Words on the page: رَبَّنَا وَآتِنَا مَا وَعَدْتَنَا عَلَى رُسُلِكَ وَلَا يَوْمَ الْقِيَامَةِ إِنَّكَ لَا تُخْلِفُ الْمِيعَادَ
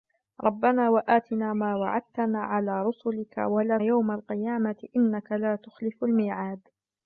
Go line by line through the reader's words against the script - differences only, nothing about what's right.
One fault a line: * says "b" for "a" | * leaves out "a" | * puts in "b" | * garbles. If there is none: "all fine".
all fine